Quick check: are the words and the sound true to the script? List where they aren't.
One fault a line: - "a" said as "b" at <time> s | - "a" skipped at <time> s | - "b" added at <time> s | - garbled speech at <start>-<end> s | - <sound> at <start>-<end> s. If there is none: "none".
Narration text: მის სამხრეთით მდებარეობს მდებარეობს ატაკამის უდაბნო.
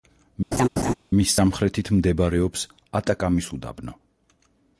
- laugh at 0.5-0.9 s
- "მდებარეობს" skipped at 2.7 s